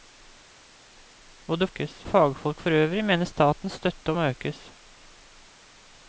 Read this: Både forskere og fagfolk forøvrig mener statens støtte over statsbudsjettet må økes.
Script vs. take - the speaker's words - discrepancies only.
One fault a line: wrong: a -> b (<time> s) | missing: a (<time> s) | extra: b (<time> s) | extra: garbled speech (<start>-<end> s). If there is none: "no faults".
wrong: forskere -> økes (1.7 s)
missing: over statsbudsjettet (4.1 s)